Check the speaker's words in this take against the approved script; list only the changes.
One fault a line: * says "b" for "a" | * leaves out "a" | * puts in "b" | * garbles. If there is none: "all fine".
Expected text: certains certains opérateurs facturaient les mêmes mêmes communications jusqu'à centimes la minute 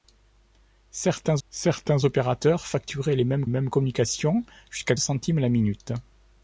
all fine